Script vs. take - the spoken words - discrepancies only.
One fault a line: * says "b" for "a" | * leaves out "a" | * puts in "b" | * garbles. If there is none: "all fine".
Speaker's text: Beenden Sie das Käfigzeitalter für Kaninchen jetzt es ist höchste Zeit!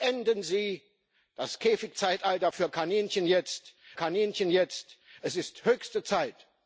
* puts in "Kaninchen jetzt"